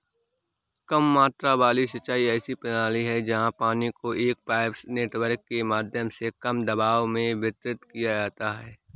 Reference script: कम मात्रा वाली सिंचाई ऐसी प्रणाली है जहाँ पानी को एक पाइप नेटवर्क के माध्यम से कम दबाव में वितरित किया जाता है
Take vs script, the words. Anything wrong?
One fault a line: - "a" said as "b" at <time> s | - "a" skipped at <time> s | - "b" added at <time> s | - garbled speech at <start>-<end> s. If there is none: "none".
none